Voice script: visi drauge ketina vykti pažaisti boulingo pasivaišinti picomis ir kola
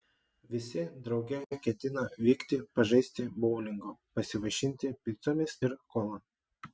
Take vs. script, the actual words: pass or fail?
pass